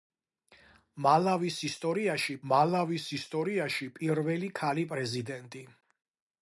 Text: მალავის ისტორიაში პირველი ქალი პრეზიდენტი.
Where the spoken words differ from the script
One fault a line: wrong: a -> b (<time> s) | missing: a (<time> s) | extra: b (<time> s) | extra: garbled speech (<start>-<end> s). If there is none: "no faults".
extra: მალავის ისტორიაში (2.5 s)